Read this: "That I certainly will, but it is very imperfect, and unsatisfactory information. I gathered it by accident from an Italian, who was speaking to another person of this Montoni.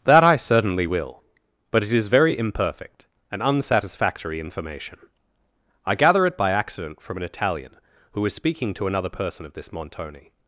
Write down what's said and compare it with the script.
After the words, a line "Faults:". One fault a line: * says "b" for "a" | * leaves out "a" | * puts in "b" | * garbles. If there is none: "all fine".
"That I certainly will, but it is very imperfect, and unsatisfactory information. I gather it by accident from an Italian, who was speaking to another person of this Montoni.
Faults:
* says "gather" for "gathered"